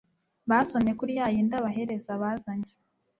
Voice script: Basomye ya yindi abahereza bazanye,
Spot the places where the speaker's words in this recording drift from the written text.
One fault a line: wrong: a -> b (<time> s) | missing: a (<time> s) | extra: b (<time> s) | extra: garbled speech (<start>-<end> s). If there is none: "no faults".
extra: kuri (1.0 s)